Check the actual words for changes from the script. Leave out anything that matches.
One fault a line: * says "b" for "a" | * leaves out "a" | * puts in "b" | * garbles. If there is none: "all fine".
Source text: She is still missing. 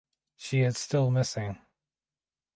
all fine